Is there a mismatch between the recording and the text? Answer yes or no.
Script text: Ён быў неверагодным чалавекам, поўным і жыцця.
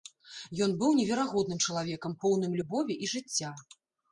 yes